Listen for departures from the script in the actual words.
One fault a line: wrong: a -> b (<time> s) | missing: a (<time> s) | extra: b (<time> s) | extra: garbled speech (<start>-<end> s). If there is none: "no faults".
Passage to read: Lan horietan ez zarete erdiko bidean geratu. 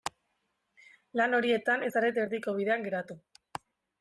no faults